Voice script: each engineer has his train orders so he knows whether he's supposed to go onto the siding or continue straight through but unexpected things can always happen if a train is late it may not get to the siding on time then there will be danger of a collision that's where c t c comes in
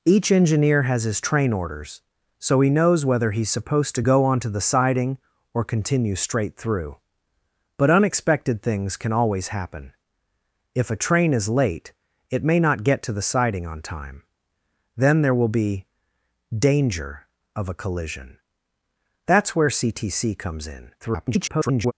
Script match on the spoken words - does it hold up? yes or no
no